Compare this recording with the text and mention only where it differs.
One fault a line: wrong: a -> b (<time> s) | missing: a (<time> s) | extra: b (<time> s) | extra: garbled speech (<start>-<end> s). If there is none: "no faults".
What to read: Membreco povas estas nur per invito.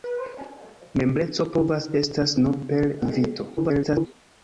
extra: garbled speech (3.6-4.1 s)